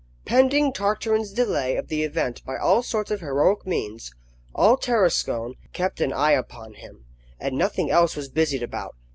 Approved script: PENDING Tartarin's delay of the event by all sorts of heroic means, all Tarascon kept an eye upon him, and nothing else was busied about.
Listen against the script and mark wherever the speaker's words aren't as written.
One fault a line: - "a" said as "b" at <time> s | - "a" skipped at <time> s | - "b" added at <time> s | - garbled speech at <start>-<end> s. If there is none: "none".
none